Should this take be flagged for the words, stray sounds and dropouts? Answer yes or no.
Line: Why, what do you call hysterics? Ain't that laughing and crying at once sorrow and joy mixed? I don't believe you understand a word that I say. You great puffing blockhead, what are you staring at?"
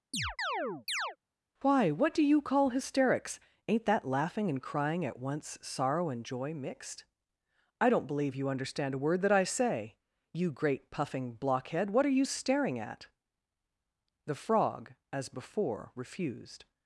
yes